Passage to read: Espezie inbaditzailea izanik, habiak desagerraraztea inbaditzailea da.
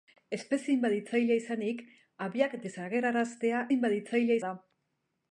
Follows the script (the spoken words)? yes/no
yes